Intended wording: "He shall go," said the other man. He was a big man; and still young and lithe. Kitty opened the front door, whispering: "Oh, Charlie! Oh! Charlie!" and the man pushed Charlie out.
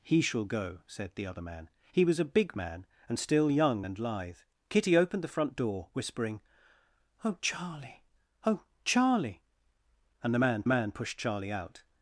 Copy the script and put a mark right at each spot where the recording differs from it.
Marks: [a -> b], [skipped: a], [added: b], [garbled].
"He shall go," said the other man. He was a big man; and still young and lithe. Kitty opened the front door, whispering: "Oh, Charlie! Oh! Charlie!" and the man [added: man] pushed Charlie out.